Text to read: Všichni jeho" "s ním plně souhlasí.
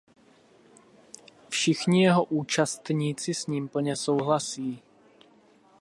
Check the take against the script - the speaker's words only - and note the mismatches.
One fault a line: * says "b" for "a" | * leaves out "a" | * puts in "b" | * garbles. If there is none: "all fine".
* puts in "účastníci"